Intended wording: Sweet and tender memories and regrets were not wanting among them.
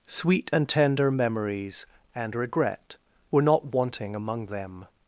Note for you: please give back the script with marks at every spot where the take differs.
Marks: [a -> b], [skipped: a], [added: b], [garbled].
Sweet and tender memories and [regrets -> regret] were not wanting among them.